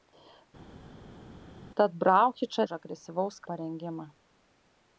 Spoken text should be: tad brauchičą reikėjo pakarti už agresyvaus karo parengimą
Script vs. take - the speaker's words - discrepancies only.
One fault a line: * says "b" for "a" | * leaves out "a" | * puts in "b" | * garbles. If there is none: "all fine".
* leaves out "reikėjo pakarti"
* leaves out "karo"